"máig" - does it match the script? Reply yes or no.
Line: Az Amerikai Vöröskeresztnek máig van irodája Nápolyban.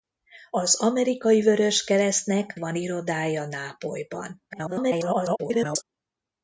no